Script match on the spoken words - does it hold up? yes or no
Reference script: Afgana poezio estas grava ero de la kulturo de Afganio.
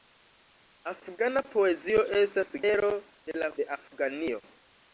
no